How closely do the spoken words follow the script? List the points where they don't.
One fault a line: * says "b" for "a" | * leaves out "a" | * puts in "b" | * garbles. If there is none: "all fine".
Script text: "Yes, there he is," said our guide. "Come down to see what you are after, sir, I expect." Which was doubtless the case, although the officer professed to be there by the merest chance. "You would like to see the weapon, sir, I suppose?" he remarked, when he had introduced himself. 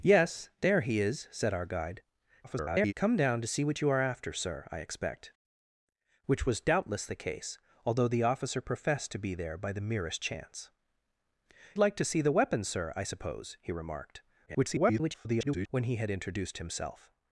* garbles
* leaves out "You would"
* garbles